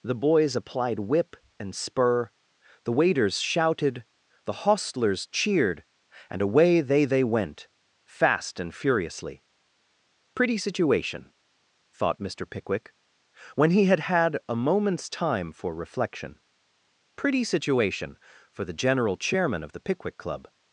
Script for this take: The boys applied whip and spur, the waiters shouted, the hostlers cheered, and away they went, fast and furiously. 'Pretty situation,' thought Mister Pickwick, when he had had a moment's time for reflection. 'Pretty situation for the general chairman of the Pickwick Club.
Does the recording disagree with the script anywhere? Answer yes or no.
yes